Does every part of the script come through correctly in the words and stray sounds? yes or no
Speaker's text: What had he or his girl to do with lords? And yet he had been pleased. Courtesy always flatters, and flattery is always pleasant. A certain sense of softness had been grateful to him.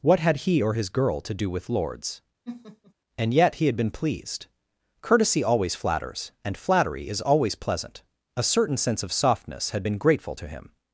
no